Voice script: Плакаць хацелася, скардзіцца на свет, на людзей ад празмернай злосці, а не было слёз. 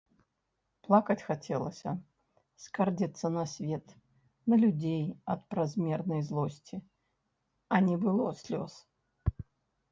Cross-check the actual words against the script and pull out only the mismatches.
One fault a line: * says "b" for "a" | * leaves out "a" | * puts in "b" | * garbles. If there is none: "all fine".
all fine